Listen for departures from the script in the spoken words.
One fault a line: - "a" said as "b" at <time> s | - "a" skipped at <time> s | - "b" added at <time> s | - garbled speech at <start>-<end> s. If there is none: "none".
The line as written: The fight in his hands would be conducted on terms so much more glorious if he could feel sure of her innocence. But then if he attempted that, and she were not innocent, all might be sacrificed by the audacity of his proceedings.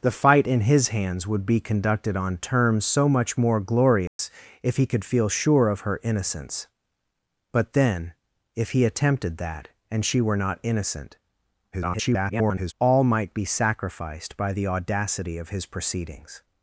- garbled speech at 11.7-12.7 s